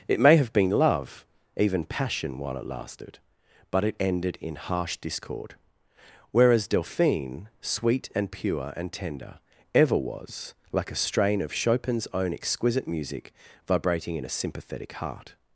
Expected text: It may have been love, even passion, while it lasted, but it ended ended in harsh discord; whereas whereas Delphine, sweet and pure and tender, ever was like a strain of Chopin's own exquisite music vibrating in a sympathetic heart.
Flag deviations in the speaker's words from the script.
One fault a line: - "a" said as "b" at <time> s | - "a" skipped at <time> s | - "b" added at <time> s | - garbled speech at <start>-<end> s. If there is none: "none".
- "ended" skipped at 4.4 s
- "whereas" skipped at 6.7 s